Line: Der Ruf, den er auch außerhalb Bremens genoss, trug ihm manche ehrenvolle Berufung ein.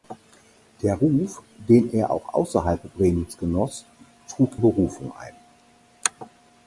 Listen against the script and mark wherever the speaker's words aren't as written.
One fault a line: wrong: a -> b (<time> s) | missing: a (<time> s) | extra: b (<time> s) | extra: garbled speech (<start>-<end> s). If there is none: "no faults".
missing: ihm manche ehrenvolle (4.5 s)